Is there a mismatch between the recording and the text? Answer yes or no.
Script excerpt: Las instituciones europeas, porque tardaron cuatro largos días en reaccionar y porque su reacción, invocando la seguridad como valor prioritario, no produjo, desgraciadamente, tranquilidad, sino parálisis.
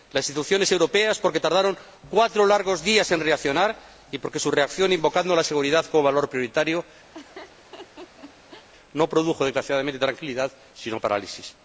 no